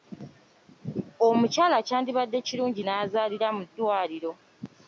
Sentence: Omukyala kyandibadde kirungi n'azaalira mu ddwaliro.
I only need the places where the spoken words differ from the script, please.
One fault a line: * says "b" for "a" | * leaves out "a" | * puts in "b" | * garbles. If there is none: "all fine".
all fine